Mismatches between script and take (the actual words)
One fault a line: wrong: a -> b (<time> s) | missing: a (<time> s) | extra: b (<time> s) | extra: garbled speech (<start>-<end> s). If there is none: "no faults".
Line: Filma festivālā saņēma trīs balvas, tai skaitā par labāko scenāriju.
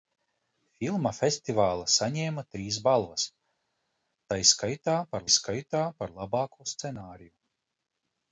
extra: skaitā par (5.4 s)